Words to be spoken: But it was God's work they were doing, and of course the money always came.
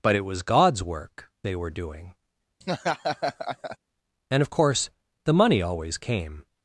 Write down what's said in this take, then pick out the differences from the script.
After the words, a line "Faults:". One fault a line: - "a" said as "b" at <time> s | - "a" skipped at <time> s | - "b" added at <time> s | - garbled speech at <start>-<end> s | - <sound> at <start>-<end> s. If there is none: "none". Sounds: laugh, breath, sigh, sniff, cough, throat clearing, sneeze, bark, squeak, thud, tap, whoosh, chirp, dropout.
But it was God's work they were doing, and of course the money always came.
Faults:
- laugh at 2.6-3.8 s